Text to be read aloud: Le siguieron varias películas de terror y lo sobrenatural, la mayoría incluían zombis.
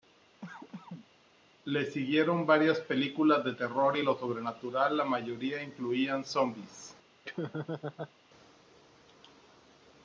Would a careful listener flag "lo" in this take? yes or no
no